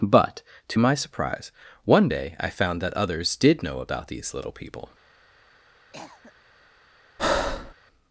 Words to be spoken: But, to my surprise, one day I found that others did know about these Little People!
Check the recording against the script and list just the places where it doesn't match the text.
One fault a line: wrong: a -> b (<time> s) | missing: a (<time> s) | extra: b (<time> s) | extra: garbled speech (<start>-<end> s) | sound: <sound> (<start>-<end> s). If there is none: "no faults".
sound: cough (5.9-6.3 s)
sound: breath (7.2-7.7 s)